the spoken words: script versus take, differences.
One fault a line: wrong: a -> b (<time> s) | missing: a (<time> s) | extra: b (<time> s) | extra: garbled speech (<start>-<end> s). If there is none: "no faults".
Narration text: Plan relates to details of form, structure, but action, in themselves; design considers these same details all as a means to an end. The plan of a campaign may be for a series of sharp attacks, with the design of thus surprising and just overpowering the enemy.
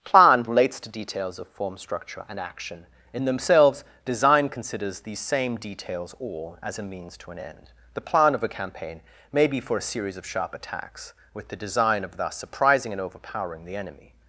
wrong: but -> and (2.3 s)
missing: just (13.0 s)